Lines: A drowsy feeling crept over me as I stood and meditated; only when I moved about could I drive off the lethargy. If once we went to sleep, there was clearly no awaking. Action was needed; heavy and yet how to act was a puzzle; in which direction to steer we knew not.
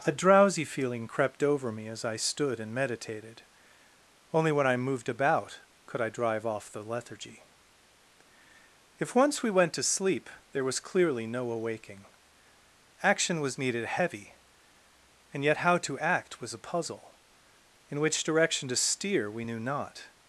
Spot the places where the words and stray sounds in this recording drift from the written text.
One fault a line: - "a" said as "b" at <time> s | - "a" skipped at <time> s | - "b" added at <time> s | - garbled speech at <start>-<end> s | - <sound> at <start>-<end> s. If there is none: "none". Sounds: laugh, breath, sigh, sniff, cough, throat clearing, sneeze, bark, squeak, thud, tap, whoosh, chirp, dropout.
none